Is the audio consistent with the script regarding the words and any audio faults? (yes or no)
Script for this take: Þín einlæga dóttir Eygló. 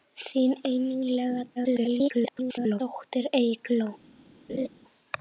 no